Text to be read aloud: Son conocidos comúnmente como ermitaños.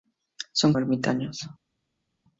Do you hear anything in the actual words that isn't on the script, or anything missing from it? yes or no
yes